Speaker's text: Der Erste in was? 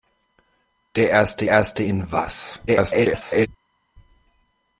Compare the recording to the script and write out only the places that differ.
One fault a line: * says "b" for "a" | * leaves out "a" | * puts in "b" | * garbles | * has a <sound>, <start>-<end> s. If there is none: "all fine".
* puts in "Erste"
* garbles